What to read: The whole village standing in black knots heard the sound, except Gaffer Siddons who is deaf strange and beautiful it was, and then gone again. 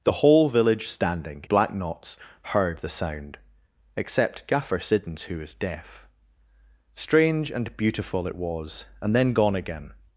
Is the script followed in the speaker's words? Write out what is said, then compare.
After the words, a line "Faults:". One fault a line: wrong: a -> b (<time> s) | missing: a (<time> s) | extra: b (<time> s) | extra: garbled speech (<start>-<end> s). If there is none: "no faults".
The whole village standing black knots heard the sound, except Gaffer Siddons who is deaf strange and beautiful it was, and then gone again.
Faults:
missing: in (1.4 s)